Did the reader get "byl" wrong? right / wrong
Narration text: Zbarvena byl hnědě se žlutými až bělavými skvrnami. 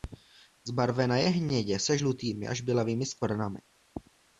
wrong